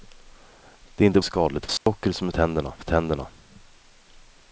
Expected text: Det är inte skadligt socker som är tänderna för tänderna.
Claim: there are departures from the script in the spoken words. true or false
false